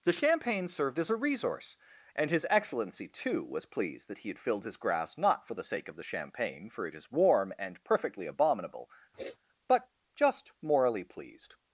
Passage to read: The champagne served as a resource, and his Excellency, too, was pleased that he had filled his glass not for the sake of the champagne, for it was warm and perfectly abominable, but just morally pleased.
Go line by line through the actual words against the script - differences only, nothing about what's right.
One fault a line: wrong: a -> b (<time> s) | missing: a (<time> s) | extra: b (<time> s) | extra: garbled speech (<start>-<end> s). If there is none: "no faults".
wrong: glass -> grass (4.8 s)
wrong: was -> is (7.0 s)